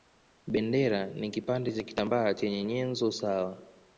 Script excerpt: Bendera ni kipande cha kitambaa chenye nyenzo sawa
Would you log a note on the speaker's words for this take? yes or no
no